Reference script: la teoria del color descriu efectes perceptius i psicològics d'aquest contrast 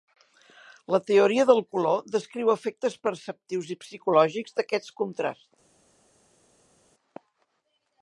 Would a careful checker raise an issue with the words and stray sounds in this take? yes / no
no